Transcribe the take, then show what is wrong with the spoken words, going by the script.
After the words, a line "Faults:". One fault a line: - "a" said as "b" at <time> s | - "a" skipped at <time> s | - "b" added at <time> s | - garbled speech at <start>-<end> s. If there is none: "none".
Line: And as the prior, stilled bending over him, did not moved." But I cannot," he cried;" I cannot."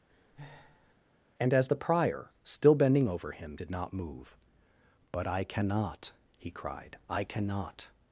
And as the prior, still bending over him, did not move." But I cannot," he cried;" I cannot."
Faults:
- "stilled" said as "still" at 2.4 s
- "moved" said as "move" at 3.9 s